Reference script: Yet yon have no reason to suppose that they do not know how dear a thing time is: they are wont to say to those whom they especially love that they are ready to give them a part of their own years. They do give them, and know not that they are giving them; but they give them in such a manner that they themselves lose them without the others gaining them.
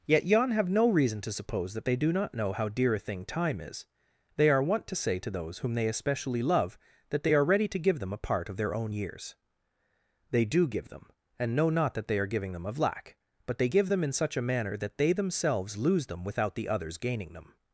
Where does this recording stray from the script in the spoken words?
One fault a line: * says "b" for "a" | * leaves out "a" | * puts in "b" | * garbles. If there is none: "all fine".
* puts in "of lack"